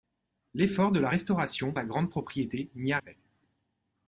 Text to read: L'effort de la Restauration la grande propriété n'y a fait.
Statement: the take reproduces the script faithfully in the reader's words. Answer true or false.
true